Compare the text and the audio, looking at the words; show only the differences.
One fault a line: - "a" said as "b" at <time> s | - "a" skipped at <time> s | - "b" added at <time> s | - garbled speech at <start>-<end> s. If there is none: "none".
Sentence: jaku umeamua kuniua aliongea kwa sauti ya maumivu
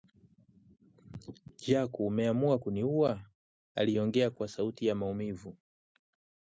none